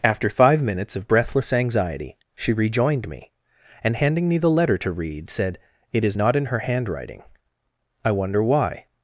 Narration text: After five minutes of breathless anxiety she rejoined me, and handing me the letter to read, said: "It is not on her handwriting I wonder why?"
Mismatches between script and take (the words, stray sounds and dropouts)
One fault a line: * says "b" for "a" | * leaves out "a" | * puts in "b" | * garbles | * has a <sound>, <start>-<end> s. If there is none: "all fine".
* says "in" for "on"